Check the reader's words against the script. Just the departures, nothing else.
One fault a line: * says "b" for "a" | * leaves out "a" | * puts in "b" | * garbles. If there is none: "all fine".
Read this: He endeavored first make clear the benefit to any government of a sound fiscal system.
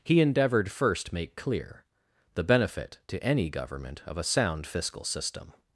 all fine